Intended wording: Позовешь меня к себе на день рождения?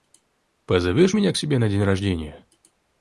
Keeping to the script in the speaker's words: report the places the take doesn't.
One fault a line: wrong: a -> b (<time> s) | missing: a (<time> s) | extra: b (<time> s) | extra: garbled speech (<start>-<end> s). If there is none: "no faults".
no faults